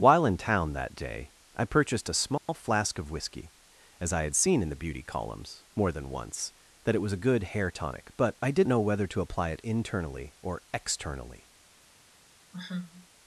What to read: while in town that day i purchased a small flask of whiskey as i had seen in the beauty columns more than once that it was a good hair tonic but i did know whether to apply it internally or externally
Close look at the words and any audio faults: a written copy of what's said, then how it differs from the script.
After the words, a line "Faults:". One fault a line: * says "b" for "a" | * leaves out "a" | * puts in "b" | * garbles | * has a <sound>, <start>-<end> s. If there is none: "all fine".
while in town that day i purchased a small flask of whiskey as i had seen in the beauty columns more than once that it was a good hair tonic but i did know whether to apply it internally or externally
Faults:
* has a dropout, 2.4-2.5 s
* has a sigh, 12.5-13.1 s